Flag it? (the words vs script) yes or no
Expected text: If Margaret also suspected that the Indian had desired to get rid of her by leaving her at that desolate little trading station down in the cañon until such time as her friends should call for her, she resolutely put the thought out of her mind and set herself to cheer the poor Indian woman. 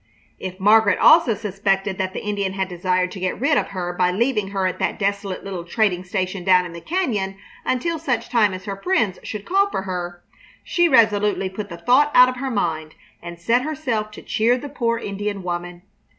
no